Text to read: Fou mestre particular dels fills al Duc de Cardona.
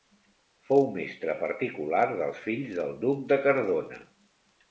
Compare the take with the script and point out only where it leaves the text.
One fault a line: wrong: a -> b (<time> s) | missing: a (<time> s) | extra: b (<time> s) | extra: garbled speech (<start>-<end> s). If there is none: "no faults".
wrong: al -> del (2.8 s)